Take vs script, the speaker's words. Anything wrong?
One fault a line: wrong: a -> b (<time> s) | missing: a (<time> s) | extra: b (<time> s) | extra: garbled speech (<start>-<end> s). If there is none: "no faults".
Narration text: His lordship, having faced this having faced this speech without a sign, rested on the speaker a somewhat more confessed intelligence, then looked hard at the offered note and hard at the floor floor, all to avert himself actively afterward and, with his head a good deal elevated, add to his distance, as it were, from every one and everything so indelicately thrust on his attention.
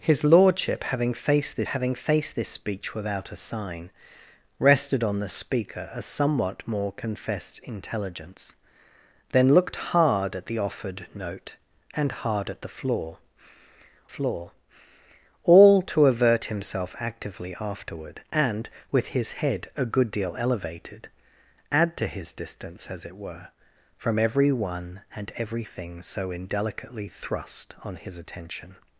no faults